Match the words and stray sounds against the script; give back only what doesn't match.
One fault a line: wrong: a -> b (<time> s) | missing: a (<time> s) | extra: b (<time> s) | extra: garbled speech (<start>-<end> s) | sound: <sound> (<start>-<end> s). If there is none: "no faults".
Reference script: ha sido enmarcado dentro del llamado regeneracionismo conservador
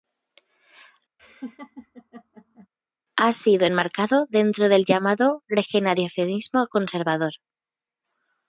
sound: laugh (1.2-2.7 s)